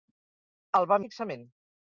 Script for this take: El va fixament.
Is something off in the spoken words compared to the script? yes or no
no